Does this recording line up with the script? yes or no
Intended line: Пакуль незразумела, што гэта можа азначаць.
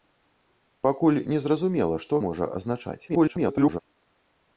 no